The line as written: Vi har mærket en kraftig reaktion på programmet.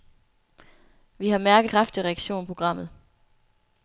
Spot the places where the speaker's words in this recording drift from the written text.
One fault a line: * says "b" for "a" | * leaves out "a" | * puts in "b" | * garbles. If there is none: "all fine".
* leaves out "en"
* leaves out "på"